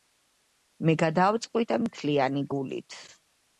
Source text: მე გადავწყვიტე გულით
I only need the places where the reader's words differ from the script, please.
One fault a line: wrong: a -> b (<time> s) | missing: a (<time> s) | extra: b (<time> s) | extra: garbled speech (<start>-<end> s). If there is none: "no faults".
extra: მთლიანი (1.9 s)